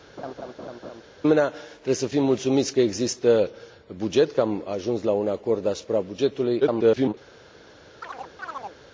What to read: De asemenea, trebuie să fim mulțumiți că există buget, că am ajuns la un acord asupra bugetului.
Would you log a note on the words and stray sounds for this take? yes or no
yes